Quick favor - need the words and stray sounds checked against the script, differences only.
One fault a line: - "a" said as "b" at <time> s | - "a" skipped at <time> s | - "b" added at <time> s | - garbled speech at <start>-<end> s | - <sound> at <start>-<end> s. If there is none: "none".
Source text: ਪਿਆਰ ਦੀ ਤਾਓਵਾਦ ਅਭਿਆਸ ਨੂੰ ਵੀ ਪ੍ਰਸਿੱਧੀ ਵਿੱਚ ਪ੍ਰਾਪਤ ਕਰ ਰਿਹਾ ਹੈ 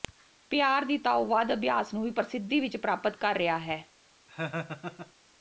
- laugh at 4.3-5.1 s